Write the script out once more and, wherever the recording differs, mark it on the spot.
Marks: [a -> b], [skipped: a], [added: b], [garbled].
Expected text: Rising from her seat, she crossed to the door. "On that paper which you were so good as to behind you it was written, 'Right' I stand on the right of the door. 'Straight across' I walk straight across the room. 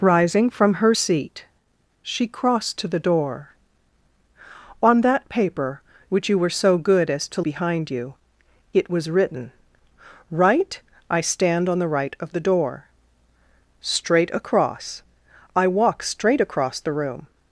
Rising from her seat, she crossed to the door. "On that paper which you were so good as to behind you it was written, 'Right' I stand on the right of the door. 'Straight across' I walk straight across the room.